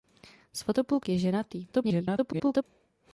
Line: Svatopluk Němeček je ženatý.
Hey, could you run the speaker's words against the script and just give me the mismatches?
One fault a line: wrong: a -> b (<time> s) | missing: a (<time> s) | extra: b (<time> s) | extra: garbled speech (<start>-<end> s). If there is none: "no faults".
missing: Němeček (1.1 s)
extra: garbled speech (1.7-2.6 s)